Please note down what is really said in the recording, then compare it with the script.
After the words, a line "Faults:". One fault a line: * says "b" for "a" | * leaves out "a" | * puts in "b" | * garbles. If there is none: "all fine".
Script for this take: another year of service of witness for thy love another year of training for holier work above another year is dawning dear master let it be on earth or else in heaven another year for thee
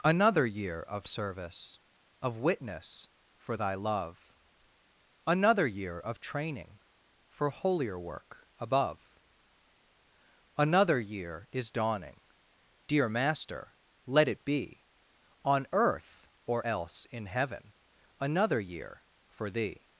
another year of service of witness for thy love another year of training for holier work above another year is dawning dear master let it be on earth or else in heaven another year for thee
Faults:
all fine